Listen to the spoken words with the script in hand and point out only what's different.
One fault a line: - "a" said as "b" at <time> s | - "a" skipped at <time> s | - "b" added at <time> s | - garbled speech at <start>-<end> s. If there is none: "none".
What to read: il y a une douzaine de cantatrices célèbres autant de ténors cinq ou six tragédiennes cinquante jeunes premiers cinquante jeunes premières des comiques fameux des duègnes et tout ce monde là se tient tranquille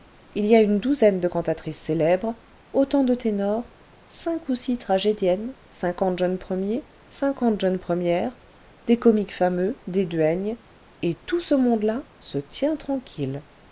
none